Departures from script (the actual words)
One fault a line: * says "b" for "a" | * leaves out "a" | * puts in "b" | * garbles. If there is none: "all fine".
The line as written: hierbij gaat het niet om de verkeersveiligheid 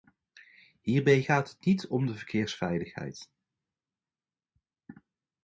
all fine